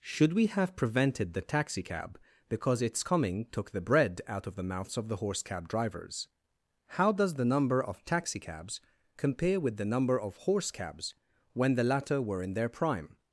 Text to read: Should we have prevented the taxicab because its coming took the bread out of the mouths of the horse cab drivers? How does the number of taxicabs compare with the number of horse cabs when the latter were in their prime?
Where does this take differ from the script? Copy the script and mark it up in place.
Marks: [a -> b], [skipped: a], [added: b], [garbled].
Should we have prevented the taxicab because its coming took the bread out of the mouths of the horse cab drivers? How does the number of taxicabs compare with the number of horse cabs when the latter were in their prime?